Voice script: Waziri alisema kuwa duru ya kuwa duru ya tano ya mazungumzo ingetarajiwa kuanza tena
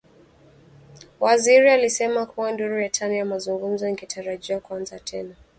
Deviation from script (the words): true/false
true